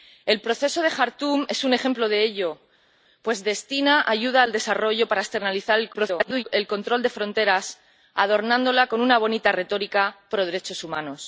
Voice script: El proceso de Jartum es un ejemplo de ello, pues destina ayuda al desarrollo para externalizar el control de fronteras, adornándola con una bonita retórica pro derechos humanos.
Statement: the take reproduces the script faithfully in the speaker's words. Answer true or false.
false